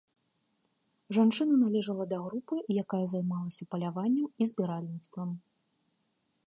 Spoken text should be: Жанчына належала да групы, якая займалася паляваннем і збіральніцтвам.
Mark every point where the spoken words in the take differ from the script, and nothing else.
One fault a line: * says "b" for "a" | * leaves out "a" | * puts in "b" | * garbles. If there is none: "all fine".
all fine